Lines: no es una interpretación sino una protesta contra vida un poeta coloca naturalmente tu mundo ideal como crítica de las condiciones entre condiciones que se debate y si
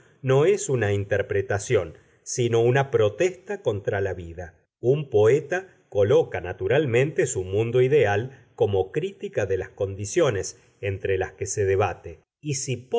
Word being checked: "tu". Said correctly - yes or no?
no